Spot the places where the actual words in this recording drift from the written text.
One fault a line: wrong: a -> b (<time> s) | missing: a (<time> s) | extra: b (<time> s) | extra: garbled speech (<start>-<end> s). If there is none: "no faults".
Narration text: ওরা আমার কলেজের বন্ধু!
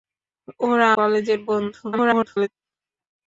missing: আমার (0.9 s)
extra: garbled speech (1.9-2.5 s)